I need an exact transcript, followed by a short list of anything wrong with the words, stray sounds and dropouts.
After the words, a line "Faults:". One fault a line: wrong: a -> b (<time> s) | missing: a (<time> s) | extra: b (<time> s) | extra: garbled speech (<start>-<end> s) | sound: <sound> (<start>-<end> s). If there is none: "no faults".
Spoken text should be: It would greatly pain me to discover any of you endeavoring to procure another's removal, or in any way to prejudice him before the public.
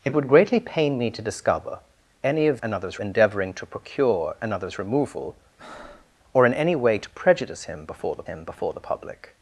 It would greatly pain me to discover any of another's endeavoring to procure another's removal, or in any way to prejudice him before the him before the public.
Faults:
wrong: you -> another's (2.6 s)
sound: breath (5.6-6.2 s)
extra: him before the (8.2 s)